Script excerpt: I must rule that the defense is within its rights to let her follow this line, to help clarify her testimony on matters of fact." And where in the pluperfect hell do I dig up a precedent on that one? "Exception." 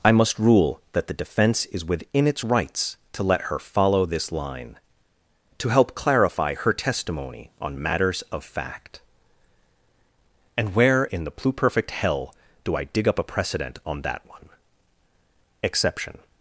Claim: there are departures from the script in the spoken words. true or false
false